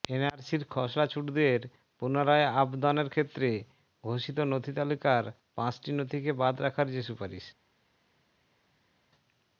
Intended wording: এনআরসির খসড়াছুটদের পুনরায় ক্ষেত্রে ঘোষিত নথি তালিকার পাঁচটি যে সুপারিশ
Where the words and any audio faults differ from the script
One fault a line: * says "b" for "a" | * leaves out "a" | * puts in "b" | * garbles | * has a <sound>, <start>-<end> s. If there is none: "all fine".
* puts in "আবদনের"
* puts in "নথিকে বাদ রাখার"